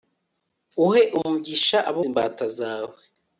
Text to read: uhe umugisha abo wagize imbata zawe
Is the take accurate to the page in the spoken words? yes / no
no